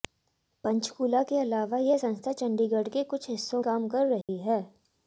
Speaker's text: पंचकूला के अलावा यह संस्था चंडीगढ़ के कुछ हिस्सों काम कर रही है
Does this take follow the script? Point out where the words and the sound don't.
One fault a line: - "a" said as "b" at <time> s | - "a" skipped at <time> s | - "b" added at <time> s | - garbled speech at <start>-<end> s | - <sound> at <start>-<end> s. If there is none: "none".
- dropout at 4.2-4.3 s